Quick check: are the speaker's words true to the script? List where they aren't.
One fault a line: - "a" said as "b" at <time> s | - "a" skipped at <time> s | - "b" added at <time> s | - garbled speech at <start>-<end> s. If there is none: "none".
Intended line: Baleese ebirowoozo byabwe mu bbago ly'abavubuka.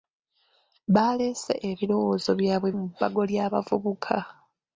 none